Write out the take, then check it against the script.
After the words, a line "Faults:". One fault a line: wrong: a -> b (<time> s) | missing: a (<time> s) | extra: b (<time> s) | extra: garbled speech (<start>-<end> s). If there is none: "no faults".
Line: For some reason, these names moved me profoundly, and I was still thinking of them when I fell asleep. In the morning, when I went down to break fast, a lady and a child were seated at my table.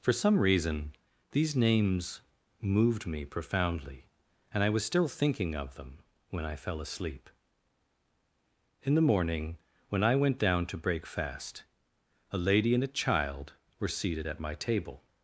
For some reason, these names moved me profoundly, and I was still thinking of them when I fell asleep. In the morning, when I went down to break fast, a lady and a child were seated at my table.
Faults:
no faults